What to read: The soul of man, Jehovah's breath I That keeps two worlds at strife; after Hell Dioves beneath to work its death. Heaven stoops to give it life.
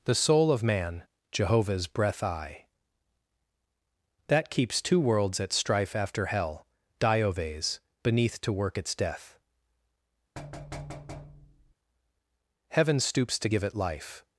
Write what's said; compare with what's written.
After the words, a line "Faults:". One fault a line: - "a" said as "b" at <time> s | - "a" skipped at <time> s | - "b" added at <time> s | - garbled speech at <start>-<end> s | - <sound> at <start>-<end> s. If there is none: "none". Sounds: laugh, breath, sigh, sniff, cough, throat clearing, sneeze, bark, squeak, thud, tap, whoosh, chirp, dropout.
The soul of man, Jehovah's breath I That keeps two worlds at strife; after Hell Dioves beneath to work its death. Heaven stoops to give it life.
Faults:
- thud at 10.4-11.7 s